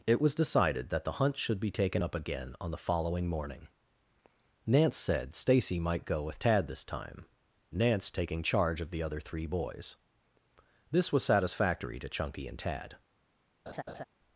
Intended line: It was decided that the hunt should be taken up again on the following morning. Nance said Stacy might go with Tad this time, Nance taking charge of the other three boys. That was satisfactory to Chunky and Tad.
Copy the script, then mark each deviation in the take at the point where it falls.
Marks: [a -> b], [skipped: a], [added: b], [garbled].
It was decided that the hunt should be taken up again on the following morning. Nance said Stacy might go with Tad this time, Nance taking charge of the other three boys. [That -> This] was satisfactory to Chunky and Tad.